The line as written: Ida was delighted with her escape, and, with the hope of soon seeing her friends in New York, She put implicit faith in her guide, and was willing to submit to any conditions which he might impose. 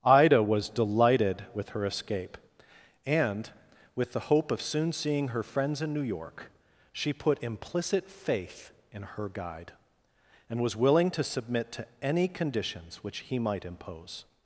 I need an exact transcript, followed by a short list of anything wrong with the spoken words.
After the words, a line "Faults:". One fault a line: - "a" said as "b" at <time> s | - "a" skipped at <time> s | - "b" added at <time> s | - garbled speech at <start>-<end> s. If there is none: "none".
Ida was delighted with her escape, and, with the hope of soon seeing her friends in New York, She put implicit faith in her guide, and was willing to submit to any conditions which he might impose.
Faults:
none